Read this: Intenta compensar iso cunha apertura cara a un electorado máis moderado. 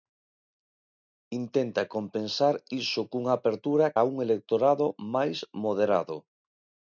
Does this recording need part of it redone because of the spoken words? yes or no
yes